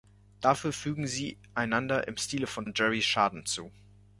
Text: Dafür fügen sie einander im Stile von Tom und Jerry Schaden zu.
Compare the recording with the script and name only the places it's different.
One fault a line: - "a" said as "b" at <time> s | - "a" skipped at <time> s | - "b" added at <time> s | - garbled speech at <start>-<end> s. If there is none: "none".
- "Tom" skipped at 2.7 s